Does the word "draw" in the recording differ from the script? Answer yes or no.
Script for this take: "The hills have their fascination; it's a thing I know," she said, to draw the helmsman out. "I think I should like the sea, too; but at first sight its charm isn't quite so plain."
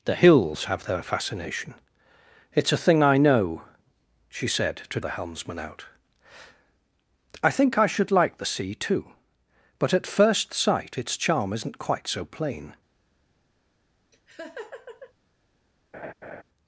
yes